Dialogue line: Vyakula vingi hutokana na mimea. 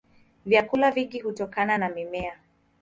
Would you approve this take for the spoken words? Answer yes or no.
yes